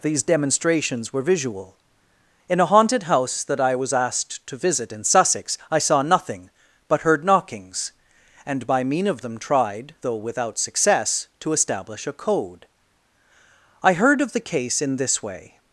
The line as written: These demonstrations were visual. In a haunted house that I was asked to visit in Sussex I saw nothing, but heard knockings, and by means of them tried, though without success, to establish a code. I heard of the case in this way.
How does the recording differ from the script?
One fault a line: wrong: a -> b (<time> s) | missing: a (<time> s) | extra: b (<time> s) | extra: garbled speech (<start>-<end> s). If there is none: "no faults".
wrong: means -> mean (8.8 s)